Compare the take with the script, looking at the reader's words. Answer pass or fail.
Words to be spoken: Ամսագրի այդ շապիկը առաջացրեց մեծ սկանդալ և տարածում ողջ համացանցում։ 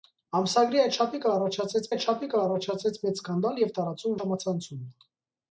fail